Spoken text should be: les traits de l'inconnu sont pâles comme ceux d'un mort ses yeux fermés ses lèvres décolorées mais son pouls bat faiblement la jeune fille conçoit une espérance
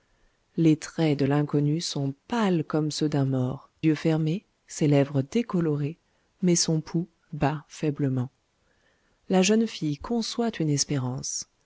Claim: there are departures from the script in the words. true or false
true